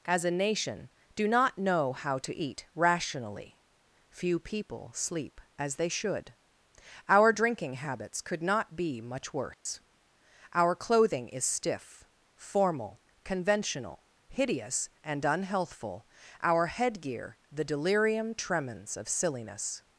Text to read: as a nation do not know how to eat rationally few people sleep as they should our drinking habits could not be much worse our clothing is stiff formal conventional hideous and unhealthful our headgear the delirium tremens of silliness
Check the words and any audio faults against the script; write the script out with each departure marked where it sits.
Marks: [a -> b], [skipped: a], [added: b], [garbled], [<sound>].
as a nation do not know how to eat rationally few people sleep as they should our drinking habits could not be much worse [dropout] our clothing is stiff formal conventional hideous and unhealthful our headgear the delirium tremens of silliness